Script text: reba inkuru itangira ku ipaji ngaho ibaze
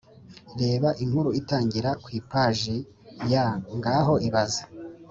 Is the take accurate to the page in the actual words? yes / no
no